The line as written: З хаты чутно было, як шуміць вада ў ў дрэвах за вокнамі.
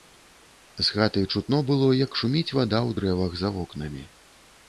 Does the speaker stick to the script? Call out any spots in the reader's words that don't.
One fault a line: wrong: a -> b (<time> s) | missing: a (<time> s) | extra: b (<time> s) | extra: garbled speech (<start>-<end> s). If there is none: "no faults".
missing: ў (3.0 s)